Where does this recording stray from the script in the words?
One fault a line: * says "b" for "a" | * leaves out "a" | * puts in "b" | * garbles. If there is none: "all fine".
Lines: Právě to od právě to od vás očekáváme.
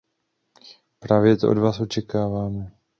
* leaves out "právě to od"